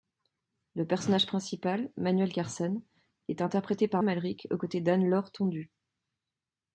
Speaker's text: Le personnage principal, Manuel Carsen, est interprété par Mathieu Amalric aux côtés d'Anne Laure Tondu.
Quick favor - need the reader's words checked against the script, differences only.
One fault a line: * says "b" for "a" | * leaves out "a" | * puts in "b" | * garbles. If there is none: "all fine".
* leaves out "Mathieu"